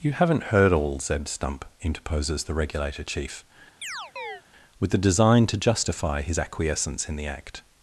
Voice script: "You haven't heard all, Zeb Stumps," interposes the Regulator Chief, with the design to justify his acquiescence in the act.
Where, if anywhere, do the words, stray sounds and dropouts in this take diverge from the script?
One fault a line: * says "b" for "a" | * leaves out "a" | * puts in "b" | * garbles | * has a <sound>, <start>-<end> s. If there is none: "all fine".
* says "Stump" for "Stumps"
* has a chirp, 3.8-4.4 s